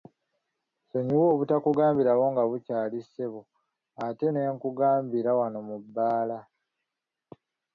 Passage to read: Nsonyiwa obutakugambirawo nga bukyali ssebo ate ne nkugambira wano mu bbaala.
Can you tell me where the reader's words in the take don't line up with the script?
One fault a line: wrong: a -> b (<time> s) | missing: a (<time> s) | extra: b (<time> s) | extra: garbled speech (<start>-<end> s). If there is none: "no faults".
no faults